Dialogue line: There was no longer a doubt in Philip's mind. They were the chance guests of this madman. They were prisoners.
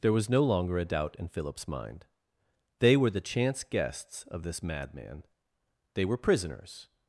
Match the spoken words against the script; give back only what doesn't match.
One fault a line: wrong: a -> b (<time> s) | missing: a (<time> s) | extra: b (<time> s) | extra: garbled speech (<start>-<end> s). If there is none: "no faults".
no faults